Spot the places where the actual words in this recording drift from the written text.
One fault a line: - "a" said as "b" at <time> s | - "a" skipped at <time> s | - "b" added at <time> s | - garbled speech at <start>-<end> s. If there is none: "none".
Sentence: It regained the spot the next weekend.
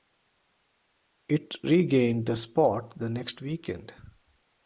none